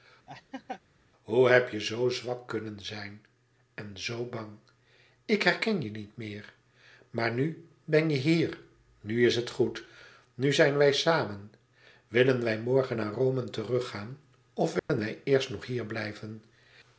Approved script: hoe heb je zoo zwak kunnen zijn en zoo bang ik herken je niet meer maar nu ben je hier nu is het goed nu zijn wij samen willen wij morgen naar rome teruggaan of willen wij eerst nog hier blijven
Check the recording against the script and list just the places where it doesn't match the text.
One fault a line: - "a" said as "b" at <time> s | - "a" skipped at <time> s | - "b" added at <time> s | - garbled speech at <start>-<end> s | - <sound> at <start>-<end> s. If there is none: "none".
- laugh at 0.3-0.8 s
- dropout at 14.8-14.9 s